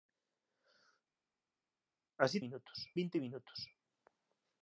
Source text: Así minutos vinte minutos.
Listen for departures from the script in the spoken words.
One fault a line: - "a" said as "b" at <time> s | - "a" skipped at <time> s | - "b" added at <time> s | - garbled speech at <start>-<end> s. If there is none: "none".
none